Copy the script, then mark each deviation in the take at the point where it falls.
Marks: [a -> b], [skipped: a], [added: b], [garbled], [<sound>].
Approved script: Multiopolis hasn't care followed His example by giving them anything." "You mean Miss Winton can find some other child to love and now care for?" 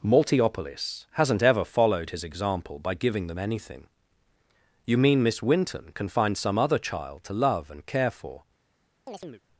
Multiopolis hasn't [care -> ever] followed His example by giving them anything." "You mean Miss Winton can find some other child to love and [skipped: now] care for?" [chirp]